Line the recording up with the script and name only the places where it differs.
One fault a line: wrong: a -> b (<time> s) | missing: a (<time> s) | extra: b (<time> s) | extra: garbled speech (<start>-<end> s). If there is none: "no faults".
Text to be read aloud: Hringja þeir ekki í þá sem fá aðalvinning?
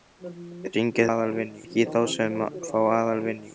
wrong: þeir -> aðalvinning (1.1 s)